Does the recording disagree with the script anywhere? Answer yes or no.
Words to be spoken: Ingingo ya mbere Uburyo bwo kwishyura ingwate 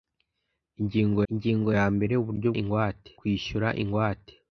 yes